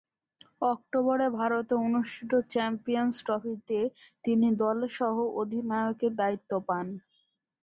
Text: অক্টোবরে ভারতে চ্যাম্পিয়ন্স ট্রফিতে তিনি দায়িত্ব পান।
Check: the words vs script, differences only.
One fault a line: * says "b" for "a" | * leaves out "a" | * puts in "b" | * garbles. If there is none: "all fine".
* puts in "অনুষ্ঠিত"
* puts in "দলের সহ অধিনায়কের"